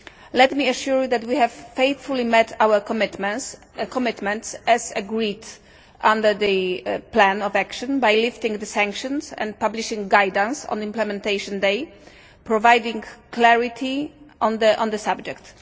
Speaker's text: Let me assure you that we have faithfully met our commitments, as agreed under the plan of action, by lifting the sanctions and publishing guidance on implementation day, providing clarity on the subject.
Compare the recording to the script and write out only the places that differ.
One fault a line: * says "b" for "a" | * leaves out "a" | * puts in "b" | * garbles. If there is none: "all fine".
all fine